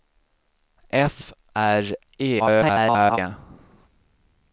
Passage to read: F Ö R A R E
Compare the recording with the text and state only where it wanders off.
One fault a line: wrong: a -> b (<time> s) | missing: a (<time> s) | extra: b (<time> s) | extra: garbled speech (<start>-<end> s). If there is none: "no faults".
missing: Ö R A (1.3 s)
extra: garbled speech (2.4-3.2 s)